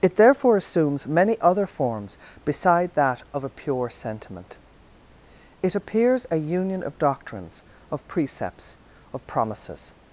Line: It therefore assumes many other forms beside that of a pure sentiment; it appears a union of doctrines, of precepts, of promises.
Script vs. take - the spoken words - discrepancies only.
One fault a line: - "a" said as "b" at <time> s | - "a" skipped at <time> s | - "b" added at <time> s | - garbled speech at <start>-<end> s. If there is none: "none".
none